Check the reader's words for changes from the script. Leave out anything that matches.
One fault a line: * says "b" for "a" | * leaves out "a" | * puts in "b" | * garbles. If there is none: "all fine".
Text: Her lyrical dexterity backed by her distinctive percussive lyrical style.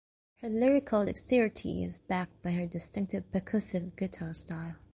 * puts in "is"
* says "guitar" for "lyrical"